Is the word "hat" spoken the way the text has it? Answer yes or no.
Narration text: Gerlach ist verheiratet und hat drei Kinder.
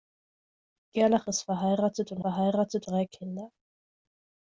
no